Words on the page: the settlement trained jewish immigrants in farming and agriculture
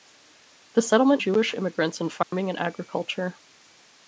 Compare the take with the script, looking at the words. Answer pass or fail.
fail